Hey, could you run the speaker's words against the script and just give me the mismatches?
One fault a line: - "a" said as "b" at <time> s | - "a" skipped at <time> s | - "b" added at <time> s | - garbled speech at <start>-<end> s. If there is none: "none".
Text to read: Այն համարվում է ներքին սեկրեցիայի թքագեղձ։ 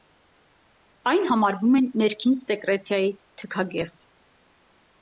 none